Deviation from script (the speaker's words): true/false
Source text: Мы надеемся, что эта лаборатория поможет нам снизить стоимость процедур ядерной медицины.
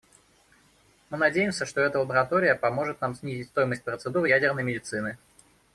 false